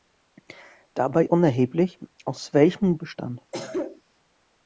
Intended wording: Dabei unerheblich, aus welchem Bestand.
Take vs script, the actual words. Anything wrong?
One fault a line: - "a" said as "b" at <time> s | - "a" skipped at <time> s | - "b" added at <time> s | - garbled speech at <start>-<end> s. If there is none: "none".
none